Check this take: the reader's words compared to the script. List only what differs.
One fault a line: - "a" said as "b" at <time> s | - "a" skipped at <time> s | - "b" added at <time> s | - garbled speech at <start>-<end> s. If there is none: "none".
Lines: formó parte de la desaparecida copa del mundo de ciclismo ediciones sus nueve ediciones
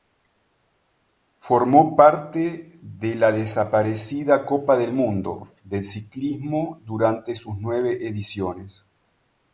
- "ediciones" said as "durante" at 6.8 s